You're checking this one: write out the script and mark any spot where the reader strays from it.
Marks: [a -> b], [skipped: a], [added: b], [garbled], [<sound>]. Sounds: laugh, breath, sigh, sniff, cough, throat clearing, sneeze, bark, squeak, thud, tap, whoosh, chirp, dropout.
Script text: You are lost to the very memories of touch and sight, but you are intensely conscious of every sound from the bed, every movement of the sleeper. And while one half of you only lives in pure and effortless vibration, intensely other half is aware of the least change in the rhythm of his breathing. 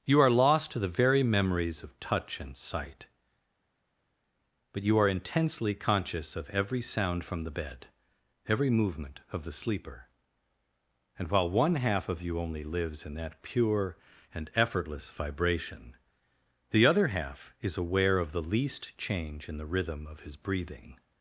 You are lost to the very memories of touch and sight, but you are intensely conscious of every sound from the bed, every movement of the sleeper. And while one half of you only lives in [added: that] pure and effortless vibration, [intensely -> the] other half is aware of the least change in the rhythm of his breathing.